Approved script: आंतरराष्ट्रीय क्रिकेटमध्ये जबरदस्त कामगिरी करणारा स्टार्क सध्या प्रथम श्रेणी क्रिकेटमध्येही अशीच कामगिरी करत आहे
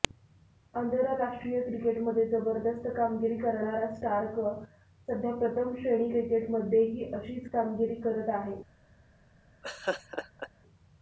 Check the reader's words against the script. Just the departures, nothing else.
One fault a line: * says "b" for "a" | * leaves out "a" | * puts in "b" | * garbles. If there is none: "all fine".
all fine